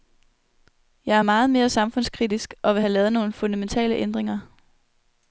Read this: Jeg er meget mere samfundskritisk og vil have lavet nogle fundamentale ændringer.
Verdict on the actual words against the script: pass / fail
pass